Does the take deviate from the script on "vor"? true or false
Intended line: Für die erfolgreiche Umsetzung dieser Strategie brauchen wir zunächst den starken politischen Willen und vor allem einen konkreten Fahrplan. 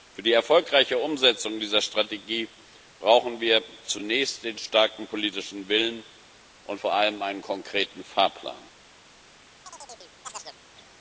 false